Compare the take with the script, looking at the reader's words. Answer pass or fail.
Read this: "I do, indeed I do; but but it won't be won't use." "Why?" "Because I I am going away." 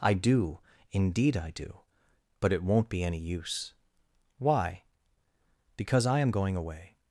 fail